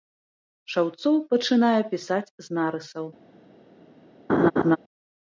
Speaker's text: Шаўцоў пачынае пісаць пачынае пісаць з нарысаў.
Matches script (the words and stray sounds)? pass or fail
fail